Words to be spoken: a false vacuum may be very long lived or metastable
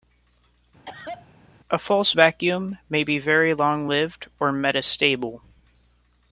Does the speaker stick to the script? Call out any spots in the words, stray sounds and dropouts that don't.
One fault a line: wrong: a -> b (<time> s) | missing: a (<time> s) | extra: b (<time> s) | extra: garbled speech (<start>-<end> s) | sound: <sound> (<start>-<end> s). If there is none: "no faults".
sound: cough (0.9-1.3 s)